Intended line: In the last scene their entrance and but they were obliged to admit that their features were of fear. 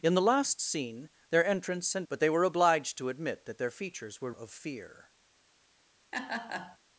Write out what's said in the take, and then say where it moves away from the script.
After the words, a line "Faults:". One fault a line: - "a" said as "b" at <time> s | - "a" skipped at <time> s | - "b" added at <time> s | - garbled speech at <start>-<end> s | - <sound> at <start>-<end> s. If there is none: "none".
In the last scene their entrance and but they were obliged to admit that their features were of fear.
Faults:
- laugh at 6.1-6.8 s